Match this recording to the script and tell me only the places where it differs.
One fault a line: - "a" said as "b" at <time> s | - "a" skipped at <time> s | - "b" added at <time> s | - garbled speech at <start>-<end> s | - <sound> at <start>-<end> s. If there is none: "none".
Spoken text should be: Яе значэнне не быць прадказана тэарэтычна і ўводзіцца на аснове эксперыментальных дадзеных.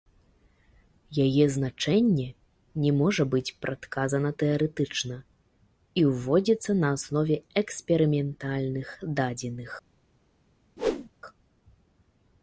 - "можа" added at 3.0 s
- whoosh at 10.8-11.1 s